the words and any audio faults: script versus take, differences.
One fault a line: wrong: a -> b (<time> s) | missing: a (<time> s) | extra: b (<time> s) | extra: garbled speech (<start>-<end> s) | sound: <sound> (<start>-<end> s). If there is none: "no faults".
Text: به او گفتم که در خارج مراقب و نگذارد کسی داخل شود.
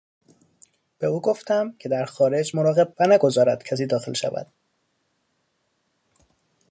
no faults